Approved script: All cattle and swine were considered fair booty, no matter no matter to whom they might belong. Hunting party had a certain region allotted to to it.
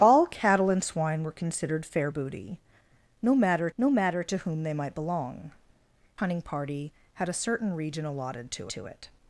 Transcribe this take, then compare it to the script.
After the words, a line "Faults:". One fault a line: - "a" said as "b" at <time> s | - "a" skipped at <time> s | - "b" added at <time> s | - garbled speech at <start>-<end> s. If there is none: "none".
All cattle and swine were considered fair booty, no matter no matter to whom they might belong. Hunting party had a certain region allotted to to it.
Faults:
none